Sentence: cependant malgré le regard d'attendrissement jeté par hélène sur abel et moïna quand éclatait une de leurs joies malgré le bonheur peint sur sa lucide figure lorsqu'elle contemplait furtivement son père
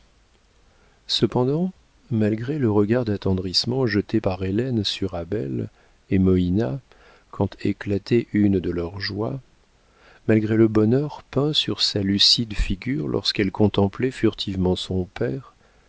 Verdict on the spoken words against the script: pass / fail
pass